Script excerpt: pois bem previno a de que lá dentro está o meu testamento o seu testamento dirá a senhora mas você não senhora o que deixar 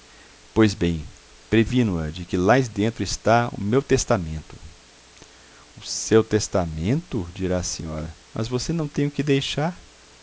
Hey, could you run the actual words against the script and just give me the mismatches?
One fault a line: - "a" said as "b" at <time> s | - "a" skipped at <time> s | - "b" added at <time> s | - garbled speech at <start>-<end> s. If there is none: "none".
- "senhora" said as "tem" at 8.9 s